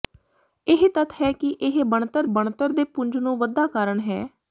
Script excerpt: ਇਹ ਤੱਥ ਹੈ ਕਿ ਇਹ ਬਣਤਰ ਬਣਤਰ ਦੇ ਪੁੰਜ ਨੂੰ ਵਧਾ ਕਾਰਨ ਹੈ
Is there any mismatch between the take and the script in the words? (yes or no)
no